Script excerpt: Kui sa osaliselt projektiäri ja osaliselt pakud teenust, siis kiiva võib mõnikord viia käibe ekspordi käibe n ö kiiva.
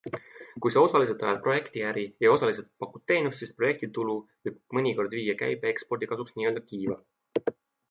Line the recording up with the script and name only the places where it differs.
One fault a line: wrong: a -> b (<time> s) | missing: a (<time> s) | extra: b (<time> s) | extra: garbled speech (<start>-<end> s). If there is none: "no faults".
extra: ajad (1.2 s)
wrong: kiiva -> projektitulu (3.6 s)
wrong: käibe -> kasuks (6.1 s)